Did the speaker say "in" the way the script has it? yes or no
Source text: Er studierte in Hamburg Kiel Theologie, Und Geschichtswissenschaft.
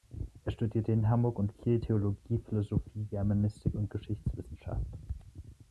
yes